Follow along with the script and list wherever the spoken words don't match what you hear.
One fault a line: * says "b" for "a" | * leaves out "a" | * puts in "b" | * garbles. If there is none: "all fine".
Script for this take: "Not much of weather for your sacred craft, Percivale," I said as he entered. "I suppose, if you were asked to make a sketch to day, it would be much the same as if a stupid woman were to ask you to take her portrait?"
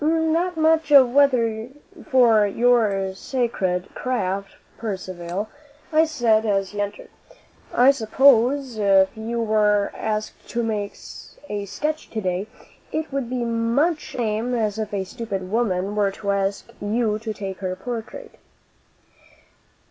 all fine